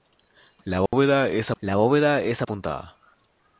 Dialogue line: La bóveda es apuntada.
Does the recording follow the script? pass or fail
fail